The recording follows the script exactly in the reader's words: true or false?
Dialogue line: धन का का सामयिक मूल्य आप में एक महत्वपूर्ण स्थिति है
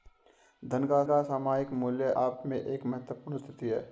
true